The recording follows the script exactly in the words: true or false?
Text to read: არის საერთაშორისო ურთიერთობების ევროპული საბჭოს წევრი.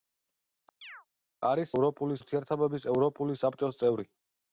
false